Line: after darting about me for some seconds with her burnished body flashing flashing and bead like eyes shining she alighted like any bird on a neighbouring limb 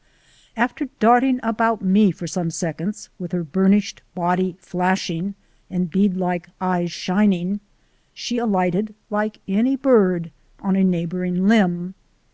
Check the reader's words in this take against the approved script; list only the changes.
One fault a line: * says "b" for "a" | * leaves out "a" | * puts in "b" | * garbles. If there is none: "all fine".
* leaves out "flashing"